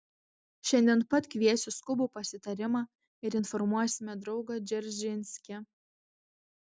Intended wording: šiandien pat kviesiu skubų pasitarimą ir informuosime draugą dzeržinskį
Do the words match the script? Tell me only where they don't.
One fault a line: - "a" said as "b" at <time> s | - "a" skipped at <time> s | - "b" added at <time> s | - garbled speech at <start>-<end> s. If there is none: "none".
none